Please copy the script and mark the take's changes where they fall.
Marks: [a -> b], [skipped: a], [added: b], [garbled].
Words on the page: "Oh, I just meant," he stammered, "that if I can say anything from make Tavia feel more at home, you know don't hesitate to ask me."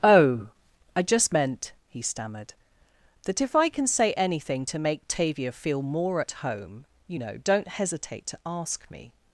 "Oh, I just meant," he stammered, "that if I can say anything [from -> to] make Tavia feel more at home, you know don't hesitate to ask me."